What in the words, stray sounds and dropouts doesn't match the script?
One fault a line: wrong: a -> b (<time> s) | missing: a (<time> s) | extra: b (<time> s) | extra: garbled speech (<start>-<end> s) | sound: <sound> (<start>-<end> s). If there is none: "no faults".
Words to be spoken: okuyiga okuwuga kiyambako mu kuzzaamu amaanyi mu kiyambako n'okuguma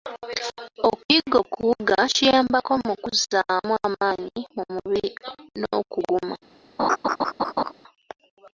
wrong: kiyambako -> mubiri (4.7 s)
sound: laugh (6.8-7.7 s)